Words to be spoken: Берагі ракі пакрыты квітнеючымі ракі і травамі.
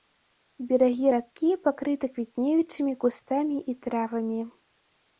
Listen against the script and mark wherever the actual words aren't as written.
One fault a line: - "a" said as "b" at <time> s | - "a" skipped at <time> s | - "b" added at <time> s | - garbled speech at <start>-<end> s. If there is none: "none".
- "ракі" said as "кустамі" at 3.1 s